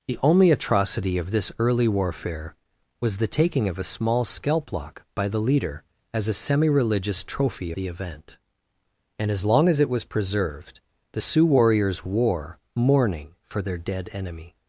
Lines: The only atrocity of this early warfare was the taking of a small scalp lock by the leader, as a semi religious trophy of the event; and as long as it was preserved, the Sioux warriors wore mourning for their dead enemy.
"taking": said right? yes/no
yes